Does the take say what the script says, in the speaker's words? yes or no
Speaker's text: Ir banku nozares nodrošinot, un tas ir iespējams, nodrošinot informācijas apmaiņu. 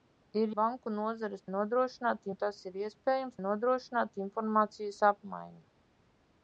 yes